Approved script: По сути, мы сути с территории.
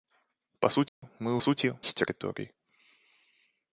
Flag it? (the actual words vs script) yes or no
no